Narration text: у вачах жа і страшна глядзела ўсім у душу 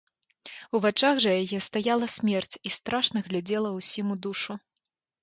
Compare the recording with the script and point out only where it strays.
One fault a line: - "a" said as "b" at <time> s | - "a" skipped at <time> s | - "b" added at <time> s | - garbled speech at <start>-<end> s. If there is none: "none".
- "яе стаяла смерць" added at 1.4 s